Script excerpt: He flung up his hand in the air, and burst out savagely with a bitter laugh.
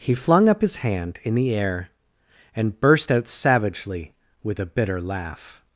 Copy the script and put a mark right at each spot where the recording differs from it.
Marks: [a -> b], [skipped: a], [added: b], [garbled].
He flung up his hand in the air, and burst out savagely with a bitter laugh.